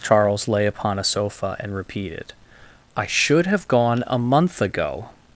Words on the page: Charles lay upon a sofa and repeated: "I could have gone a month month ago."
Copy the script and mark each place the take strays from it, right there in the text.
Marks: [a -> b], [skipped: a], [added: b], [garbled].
Charles lay upon a sofa and repeated: "I [could -> should] have gone a month [skipped: month] ago."